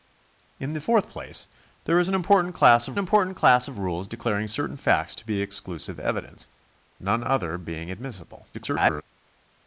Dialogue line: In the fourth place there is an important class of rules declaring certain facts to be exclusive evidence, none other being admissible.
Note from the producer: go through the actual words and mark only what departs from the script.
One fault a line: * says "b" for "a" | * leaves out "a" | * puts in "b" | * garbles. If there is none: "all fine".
* puts in "important class of"
* garbles